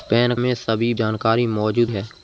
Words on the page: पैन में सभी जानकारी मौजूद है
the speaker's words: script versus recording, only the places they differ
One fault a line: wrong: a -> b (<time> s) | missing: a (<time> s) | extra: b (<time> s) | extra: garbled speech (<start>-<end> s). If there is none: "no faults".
no faults